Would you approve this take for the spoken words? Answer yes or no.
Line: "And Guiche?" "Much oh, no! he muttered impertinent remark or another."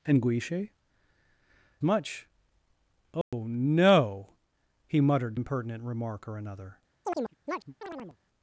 yes